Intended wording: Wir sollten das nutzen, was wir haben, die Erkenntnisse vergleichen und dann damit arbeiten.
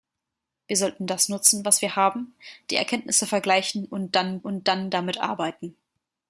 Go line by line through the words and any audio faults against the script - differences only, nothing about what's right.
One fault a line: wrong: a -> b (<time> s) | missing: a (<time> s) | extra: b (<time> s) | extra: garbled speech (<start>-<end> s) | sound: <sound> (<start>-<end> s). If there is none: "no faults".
extra: und dann (4.4 s)